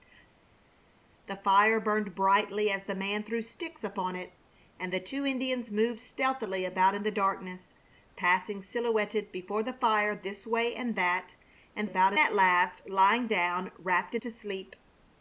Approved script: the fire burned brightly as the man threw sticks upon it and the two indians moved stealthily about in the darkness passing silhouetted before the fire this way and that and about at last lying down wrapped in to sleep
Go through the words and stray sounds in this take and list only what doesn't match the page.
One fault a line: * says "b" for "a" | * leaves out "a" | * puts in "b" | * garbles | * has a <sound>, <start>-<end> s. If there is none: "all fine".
all fine